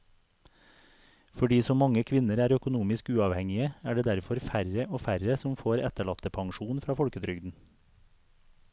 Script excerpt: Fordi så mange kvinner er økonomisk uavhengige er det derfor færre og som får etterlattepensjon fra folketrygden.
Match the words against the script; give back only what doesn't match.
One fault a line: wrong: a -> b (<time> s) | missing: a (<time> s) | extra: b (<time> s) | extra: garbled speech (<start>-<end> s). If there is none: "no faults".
extra: færre (5.1 s)